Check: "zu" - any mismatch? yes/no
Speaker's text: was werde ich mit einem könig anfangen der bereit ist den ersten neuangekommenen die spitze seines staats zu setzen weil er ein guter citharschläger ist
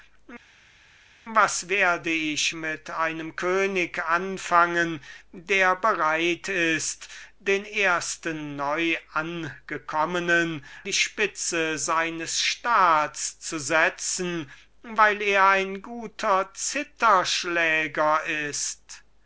no